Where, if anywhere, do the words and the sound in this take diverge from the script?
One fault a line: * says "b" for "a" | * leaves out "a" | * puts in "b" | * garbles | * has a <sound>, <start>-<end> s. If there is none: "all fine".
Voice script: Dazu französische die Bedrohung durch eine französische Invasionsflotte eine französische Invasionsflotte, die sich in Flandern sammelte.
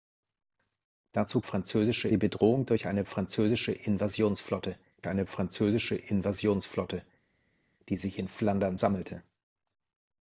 all fine